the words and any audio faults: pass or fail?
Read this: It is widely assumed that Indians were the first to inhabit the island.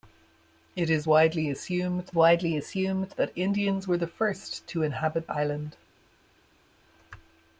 fail